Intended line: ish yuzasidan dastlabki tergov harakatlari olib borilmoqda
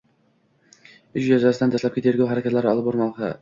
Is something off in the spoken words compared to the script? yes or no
no